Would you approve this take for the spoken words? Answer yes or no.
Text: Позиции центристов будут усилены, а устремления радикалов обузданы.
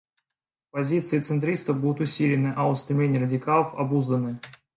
yes